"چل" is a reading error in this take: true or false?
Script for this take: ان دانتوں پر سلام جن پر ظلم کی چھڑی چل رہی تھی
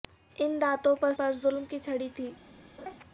true